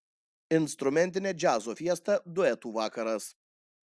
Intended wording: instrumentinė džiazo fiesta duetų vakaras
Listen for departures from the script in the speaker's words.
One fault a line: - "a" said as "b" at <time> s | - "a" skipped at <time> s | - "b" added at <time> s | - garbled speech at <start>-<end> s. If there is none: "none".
none